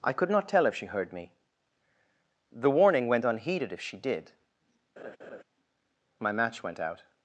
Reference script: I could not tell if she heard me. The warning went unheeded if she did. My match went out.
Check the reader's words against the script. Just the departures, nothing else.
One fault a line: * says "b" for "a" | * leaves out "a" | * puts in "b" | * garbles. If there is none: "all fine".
all fine